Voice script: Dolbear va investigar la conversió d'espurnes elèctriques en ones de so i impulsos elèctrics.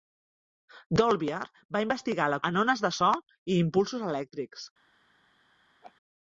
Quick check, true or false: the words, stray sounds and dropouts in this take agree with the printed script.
false